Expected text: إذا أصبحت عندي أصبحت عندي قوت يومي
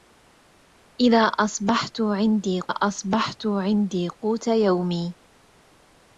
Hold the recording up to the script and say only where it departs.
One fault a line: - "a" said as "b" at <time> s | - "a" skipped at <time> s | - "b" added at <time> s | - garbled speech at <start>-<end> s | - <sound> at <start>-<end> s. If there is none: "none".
none